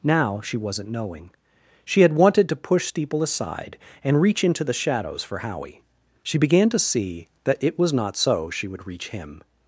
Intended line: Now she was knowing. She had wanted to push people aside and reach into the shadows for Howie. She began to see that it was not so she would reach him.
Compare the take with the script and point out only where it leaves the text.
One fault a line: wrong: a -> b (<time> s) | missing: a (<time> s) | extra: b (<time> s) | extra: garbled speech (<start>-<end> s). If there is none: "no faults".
wrong: was -> wasn't (0.6 s)
wrong: people -> steeple (2.9 s)